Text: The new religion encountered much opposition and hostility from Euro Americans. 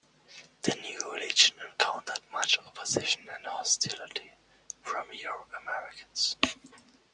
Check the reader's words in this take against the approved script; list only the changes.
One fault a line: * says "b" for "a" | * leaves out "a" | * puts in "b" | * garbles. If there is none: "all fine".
all fine